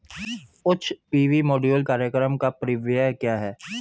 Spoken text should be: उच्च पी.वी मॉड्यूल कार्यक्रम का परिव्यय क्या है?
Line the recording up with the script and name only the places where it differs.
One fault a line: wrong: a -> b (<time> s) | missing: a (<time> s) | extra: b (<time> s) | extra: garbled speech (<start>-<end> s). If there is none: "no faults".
no faults